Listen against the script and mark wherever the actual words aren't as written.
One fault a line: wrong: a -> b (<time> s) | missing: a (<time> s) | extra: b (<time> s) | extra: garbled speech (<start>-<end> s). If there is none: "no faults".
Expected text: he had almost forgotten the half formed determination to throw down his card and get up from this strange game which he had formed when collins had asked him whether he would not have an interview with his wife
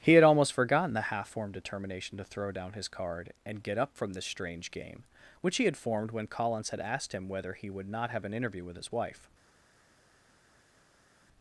no faults